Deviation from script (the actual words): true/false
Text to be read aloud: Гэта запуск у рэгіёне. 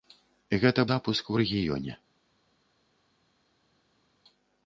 false